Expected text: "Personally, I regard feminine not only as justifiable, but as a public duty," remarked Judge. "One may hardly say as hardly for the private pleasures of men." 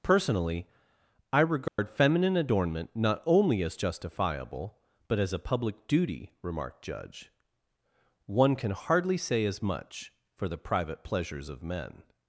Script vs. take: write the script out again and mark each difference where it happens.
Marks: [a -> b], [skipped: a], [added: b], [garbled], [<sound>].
"Personally, I regard [dropout] feminine [added: adornment] not only as justifiable, but as a public duty," remarked Judge. "One [may -> can] hardly say as [hardly -> much] for the private pleasures of men."